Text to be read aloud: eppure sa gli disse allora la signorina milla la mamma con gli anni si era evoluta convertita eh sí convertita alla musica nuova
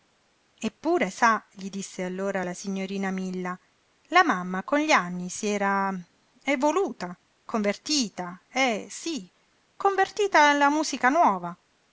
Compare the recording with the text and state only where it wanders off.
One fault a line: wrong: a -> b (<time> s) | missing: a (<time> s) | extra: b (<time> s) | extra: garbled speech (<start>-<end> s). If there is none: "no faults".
no faults